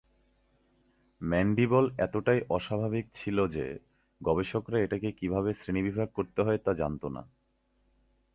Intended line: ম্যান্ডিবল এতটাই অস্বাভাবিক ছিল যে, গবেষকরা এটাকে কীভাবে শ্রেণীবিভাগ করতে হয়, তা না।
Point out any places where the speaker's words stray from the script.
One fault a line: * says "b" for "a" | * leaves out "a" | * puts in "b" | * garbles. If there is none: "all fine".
* puts in "জানত"